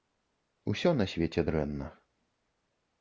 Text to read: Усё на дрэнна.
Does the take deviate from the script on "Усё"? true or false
false